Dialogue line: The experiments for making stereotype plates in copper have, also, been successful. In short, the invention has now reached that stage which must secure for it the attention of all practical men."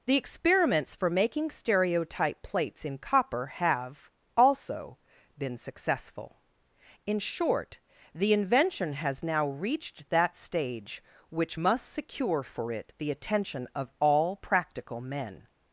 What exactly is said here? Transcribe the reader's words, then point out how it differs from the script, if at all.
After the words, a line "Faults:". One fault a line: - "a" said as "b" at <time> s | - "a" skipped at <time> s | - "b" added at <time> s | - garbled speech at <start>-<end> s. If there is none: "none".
The experiments for making stereotype plates in copper have, also, been successful. In short, the invention has now reached that stage which must secure for it the attention of all practical men."
Faults:
none